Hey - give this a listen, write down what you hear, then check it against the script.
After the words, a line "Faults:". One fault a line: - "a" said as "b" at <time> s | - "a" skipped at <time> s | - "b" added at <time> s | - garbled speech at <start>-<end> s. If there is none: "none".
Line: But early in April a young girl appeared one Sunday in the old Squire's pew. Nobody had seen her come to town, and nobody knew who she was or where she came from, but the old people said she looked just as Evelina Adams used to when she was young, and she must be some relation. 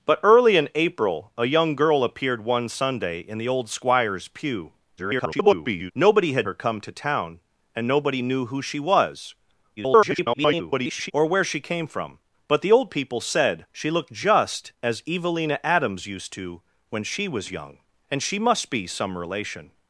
But early in April a young girl appeared one Sunday in the old Squire's pew. [garbled] Nobody had her come to town, and nobody knew who she was [garbled] or where she came from, but the old people said she looked just as Evelina Adams used to when she was young, and she must be some relation.
Faults:
- garbled speech at 5.0-5.9 s
- "seen" skipped at 6.5 s
- garbled speech at 9.8-11.1 s